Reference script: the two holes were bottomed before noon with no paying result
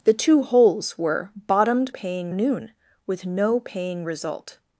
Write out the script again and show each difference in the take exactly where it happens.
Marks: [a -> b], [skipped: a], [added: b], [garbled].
the two holes were bottomed [before -> paying] noon with no paying result